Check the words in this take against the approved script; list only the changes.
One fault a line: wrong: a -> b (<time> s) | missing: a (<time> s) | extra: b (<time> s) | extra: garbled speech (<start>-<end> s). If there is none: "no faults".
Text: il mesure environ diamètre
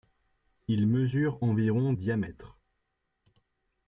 no faults